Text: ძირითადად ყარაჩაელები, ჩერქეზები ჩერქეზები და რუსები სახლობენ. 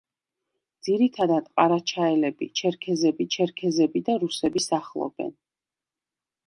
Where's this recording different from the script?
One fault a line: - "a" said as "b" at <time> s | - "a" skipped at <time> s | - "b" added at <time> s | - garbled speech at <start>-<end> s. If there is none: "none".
none